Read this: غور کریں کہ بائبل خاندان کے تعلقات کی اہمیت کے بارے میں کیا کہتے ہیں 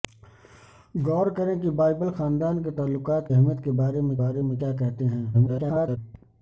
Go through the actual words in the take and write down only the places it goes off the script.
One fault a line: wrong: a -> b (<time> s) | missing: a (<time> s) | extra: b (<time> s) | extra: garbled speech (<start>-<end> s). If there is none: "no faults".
missing: کی (3.3 s)
extra: بارے میں (4.2 s)
extra: garbled speech (5.3-6.0 s)